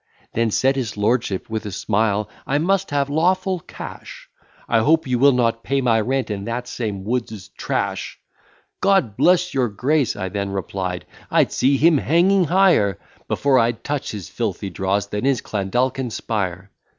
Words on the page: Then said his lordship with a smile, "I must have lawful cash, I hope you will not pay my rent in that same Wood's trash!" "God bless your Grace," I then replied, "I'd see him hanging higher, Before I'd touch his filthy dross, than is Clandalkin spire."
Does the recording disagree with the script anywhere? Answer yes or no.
no